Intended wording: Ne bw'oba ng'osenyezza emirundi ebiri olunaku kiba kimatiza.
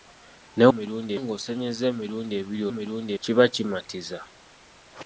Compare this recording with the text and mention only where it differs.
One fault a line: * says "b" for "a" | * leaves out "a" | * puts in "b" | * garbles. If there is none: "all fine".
* says "emirundi" for "bw'oba"
* says "emirundi" for "olunaku"